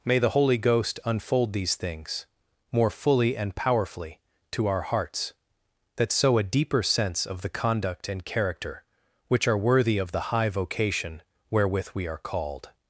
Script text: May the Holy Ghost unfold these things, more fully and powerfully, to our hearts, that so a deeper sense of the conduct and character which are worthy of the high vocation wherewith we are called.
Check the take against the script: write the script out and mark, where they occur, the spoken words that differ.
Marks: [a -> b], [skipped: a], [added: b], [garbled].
May the Holy Ghost unfold these things, more fully and powerfully, to our hearts, that so a deeper sense of the conduct and character which are worthy of the high vocation wherewith we are called.